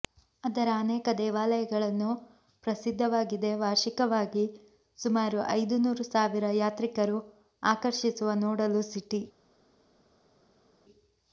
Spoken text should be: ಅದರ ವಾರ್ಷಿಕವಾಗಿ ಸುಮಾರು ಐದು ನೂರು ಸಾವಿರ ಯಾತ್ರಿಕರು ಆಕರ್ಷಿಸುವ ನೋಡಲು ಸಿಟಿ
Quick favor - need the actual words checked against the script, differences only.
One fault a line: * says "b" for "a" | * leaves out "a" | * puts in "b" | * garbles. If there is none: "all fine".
* puts in "ಅನೇಕ ದೇವಾಲಯಗಳನ್ನು ಪ್ರಸಿದ್ಧವಾಗಿದೆ"